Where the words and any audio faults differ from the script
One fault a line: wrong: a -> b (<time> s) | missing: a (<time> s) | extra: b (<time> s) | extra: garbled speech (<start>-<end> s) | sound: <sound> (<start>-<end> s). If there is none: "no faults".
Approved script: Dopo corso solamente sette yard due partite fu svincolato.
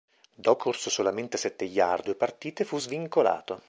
no faults